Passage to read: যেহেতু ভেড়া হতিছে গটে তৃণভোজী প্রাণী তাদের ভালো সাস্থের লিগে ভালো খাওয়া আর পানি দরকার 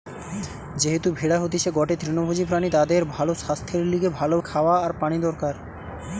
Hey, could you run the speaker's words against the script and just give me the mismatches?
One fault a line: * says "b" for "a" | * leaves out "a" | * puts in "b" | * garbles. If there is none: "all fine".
all fine